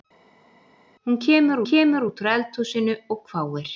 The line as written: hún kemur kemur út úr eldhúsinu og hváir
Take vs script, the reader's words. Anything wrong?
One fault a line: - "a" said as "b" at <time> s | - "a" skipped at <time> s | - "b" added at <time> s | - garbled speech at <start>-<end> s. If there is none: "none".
none